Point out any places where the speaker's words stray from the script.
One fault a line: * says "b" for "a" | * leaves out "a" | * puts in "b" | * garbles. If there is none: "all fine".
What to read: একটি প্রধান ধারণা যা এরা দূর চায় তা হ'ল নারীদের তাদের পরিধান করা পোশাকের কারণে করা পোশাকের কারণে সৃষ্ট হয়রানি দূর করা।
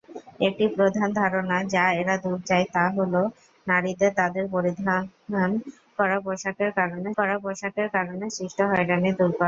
all fine